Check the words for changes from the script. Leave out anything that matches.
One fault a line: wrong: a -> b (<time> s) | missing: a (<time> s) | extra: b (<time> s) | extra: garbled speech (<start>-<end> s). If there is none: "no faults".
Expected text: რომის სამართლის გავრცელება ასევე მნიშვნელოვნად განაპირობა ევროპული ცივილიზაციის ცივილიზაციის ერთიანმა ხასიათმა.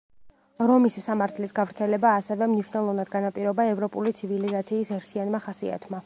missing: ცივილიზაციის (4.9 s)